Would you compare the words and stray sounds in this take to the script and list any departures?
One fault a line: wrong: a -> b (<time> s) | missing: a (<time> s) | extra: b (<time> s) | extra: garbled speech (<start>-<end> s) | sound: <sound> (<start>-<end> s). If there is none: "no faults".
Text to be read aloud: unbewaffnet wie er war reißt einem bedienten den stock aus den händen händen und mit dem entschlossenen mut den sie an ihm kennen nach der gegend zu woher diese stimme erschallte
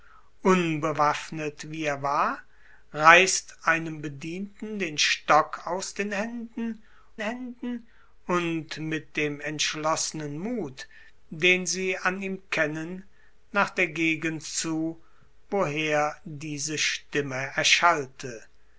no faults